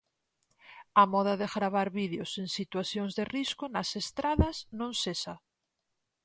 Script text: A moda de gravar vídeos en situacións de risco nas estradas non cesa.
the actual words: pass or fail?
pass